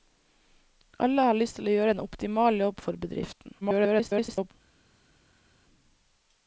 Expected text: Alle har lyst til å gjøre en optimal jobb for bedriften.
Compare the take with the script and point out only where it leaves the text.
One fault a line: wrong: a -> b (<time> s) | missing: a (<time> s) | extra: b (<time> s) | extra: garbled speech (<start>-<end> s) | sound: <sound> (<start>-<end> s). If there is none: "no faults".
extra: garbled speech (3.6-4.5 s)